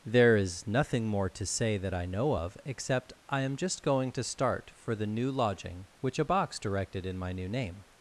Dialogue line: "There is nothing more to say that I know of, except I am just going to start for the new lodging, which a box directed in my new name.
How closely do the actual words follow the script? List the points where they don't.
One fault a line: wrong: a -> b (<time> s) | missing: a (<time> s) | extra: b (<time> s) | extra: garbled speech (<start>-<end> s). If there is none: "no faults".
no faults